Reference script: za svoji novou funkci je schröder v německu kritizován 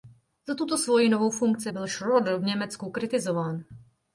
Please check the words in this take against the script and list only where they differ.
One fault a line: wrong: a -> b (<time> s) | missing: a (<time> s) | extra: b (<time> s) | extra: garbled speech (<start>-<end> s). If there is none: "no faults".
extra: tuto (0.6 s)
wrong: je -> byl (1.7 s)